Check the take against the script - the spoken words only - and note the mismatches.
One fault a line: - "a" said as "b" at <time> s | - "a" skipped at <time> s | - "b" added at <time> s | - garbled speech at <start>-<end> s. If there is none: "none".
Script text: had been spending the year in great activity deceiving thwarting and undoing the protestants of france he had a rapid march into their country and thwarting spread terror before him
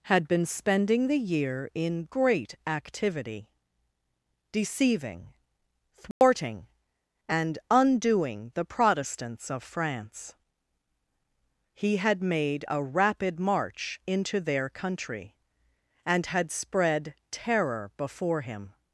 - "made" added at 12.2 s
- "thwarting" said as "had" at 16.3 s